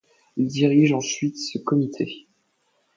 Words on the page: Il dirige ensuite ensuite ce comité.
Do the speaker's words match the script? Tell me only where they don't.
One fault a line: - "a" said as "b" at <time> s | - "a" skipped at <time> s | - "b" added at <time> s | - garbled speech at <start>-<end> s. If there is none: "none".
- "ensuite" skipped at 1.4 s